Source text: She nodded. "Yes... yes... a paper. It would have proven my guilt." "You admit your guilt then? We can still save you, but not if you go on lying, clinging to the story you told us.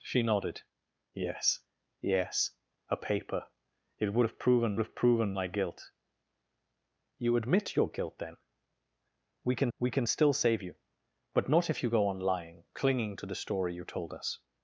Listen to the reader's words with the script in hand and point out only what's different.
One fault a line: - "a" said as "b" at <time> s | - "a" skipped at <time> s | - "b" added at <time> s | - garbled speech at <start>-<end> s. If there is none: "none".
- "have proven" added at 4.8 s
- "we can" added at 9.8 s